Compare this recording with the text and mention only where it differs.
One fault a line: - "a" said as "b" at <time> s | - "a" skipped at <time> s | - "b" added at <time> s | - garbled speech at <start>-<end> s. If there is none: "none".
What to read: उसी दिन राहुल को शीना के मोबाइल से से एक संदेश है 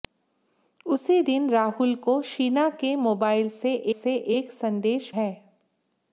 none